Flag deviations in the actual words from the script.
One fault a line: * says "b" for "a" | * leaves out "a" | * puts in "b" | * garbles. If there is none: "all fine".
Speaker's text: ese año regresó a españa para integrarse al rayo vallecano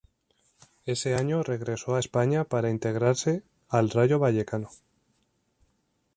all fine